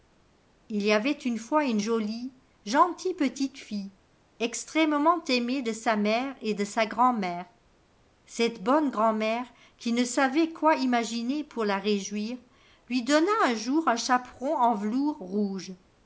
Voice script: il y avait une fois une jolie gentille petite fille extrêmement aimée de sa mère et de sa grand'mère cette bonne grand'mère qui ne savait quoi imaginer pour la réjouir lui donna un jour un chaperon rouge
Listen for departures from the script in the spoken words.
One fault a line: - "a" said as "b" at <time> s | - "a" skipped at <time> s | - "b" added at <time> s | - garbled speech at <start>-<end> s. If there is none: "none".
- "en velours" added at 14.5 s